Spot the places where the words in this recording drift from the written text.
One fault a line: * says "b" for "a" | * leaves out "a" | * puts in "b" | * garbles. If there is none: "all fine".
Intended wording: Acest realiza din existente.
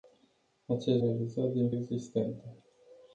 all fine